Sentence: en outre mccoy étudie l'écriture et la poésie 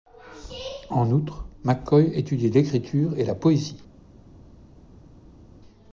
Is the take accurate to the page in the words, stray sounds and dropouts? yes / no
yes